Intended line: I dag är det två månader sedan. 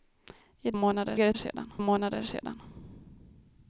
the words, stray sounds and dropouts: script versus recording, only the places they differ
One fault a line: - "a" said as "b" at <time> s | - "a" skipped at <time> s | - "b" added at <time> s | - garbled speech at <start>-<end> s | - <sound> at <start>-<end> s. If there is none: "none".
- "dag" said as "månader" at 0.7 s
- "två" said as "sedan" at 1.3 s